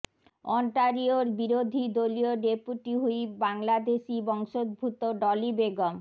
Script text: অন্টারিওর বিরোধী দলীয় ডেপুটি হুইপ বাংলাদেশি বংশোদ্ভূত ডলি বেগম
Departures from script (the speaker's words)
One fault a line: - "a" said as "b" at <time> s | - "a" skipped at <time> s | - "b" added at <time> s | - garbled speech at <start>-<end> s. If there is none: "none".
none